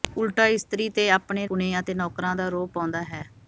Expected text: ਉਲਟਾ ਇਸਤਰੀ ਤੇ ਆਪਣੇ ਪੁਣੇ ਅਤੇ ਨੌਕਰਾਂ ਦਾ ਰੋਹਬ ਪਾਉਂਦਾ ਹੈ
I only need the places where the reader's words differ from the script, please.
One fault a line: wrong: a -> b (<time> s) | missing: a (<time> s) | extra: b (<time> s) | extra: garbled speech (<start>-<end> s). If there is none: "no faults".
no faults